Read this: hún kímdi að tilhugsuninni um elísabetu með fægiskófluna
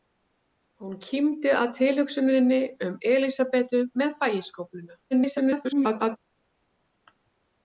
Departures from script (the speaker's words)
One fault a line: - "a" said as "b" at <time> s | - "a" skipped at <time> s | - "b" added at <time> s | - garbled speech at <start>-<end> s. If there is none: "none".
- garbled speech at 5.1-6.2 s